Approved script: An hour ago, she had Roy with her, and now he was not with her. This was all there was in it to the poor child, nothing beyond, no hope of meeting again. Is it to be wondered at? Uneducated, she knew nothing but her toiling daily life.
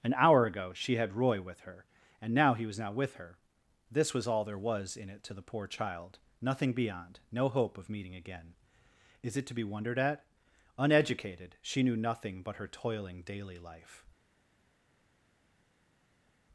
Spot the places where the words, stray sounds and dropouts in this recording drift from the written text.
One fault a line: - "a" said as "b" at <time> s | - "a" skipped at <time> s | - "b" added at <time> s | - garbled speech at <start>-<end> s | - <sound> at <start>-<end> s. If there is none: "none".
none